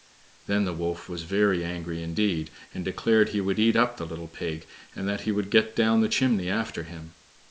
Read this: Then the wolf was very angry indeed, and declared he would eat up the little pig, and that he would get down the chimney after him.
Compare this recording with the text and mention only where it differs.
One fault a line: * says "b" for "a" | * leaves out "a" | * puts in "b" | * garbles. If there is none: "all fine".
all fine